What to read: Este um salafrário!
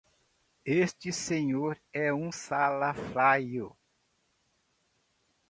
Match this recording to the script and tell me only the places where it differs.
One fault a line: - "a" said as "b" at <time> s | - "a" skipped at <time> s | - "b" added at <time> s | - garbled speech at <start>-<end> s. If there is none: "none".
- "senhor é" added at 1.1 s